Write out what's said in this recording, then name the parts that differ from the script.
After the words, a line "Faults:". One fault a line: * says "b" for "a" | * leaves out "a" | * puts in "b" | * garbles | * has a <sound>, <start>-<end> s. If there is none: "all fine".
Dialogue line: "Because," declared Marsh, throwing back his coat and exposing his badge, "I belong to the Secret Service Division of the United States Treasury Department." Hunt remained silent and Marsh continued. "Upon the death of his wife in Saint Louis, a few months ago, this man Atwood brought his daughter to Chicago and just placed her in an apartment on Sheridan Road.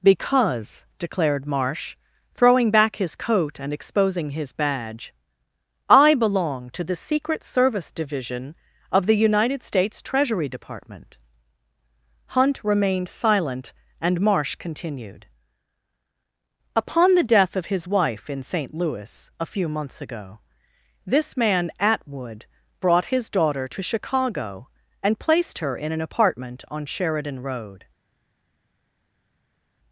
"Because," declared Marsh, throwing back his coat and exposing his badge, "I belong to the Secret Service Division of the United States Treasury Department." Hunt remained silent and Marsh continued. "Upon the death of his wife in Saint Louis, a few months ago, this man Atwood brought his daughter to Chicago and placed her in an apartment on Sheridan Road.
Faults:
* leaves out "just"